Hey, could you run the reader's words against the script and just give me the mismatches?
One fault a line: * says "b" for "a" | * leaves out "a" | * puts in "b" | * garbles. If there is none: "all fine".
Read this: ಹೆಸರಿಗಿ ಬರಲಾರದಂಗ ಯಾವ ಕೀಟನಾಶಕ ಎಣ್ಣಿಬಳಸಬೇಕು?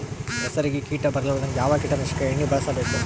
* puts in "ಕೀಟ"